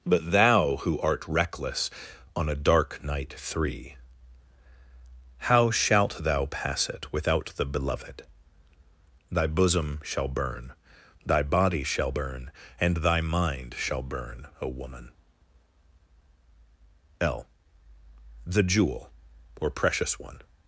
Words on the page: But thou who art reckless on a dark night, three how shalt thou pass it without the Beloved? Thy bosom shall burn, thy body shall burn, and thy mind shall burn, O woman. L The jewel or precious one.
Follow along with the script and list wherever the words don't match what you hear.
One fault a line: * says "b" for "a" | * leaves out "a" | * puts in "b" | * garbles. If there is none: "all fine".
all fine